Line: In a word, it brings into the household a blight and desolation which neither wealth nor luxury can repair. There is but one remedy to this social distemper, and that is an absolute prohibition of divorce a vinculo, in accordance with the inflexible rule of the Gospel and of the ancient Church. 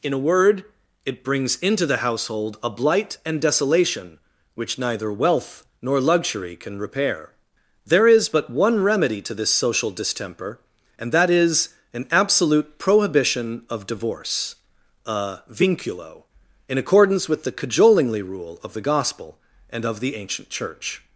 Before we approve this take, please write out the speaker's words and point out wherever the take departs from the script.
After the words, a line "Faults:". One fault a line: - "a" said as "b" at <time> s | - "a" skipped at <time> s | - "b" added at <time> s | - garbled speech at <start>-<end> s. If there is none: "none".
In a word, it brings into the household a blight and desolation which neither wealth nor luxury can repair. There is but one remedy to this social distemper, and that is an absolute prohibition of divorce a vinculo, in accordance with the cajolingly rule of the Gospel and of the ancient Church.
Faults:
- "inflexible" said as "cajolingly" at 17.5 s